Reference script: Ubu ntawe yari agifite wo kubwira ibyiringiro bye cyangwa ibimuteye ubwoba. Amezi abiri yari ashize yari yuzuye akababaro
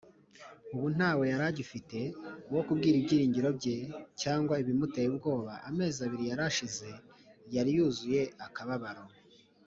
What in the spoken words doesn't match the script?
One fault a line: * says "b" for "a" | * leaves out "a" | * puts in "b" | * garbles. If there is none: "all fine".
all fine